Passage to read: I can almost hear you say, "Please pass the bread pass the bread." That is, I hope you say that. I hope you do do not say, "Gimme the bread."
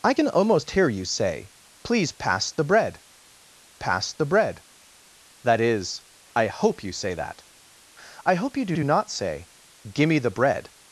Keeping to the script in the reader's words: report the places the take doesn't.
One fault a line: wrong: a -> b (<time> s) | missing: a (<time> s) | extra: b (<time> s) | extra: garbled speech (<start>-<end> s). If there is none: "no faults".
no faults